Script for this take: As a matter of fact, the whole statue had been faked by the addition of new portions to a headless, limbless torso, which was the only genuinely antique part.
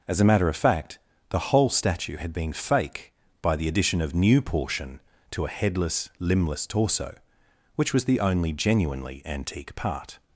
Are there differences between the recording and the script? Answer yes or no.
yes